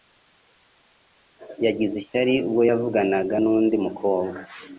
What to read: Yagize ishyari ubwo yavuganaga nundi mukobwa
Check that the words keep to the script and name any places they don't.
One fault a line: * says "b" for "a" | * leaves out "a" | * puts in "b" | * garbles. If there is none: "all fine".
all fine